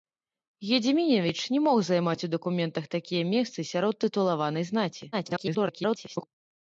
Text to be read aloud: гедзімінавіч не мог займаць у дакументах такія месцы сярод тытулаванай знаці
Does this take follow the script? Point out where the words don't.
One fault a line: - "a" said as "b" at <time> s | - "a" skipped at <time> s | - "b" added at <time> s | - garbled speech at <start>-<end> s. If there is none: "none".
- garbled speech at 5.1-6.3 s